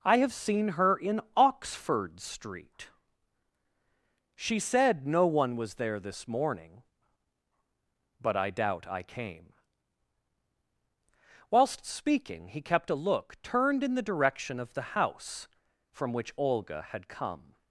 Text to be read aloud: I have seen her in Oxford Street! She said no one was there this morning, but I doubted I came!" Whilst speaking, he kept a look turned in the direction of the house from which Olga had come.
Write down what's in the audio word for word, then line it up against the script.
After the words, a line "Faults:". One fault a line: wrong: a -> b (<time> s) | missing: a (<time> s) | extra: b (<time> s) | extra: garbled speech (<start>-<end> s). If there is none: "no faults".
I have seen her in Oxford Street! She said no one was there this morning, but I doubt I came!" Whilst speaking, he kept a look turned in the direction of the house from which Olga had come.
Faults:
wrong: doubted -> doubt (8.5 s)